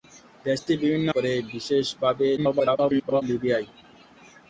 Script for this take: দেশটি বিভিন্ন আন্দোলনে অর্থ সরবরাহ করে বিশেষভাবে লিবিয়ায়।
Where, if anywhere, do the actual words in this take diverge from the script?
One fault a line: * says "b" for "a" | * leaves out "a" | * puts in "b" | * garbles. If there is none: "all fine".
* leaves out "আন্দোলনে অর্থ সরবরাহ"
* garbles